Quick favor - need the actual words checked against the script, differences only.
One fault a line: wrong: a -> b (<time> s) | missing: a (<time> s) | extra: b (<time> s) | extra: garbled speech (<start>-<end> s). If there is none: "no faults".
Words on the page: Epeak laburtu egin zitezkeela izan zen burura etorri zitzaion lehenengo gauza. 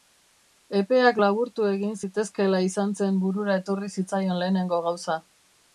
no faults